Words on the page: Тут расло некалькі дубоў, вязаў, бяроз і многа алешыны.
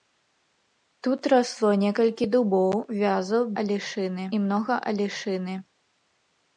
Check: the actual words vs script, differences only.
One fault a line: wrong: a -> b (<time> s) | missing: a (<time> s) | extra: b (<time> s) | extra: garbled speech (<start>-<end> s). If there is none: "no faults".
wrong: бяроз -> алешыны (3.6 s)